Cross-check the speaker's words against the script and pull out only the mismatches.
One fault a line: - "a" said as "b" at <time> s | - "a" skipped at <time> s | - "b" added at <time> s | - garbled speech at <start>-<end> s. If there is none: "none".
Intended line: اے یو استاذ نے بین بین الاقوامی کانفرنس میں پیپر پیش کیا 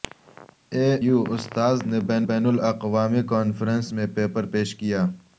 none